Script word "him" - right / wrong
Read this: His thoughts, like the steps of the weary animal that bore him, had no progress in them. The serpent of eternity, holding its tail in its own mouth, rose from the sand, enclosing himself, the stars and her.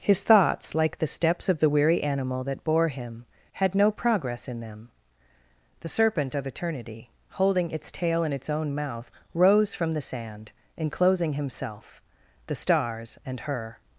right